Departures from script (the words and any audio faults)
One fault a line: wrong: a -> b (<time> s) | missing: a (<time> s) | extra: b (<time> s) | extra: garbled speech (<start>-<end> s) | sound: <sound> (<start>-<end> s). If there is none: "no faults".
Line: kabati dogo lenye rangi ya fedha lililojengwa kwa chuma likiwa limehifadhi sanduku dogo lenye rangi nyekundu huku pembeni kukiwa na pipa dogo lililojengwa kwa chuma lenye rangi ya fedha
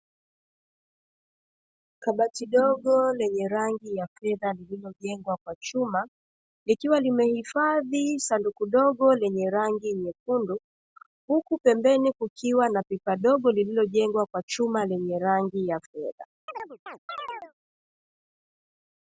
sound: chirp (16.5-17.5 s)